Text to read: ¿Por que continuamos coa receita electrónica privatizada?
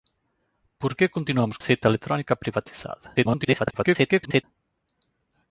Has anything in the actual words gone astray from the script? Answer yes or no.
yes